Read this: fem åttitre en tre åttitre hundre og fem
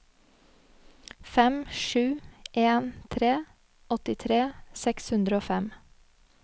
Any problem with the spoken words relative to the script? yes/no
yes